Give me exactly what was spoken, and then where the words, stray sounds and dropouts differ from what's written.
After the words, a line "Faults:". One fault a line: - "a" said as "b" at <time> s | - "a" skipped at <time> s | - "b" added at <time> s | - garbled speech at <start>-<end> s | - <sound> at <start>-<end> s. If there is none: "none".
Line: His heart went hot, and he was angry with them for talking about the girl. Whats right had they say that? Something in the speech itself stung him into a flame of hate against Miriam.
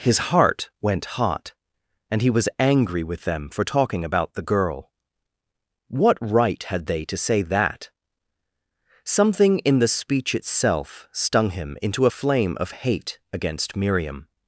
His heart went hot, and he was angry with them for talking about the girl. What right had they to say that? Something in the speech itself stung him into a flame of hate against Miriam.
Faults:
- "Whats" said as "What" at 5.9 s
- "to" added at 7.0 s